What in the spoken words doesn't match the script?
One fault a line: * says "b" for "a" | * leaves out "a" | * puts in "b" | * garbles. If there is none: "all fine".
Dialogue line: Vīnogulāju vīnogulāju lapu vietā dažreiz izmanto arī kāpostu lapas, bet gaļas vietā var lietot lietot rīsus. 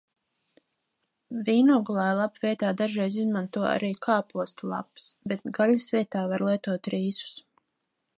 * leaves out "vīnogulāju"
* leaves out "lietot"